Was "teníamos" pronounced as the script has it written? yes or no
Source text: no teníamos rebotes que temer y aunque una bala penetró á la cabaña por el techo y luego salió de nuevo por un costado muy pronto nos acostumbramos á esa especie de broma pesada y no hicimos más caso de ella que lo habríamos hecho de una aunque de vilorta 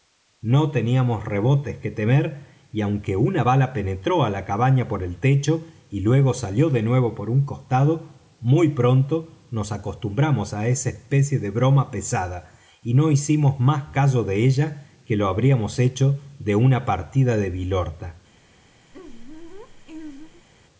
yes